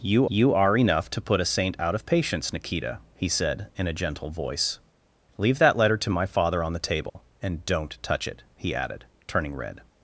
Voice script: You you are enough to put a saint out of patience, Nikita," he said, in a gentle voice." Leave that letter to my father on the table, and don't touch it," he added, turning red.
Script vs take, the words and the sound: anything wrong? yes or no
yes